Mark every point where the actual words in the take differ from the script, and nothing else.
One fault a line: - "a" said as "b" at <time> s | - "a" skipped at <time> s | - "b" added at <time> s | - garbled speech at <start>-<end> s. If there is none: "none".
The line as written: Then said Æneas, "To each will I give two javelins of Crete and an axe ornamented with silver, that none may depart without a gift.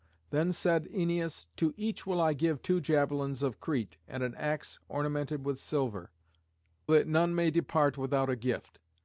none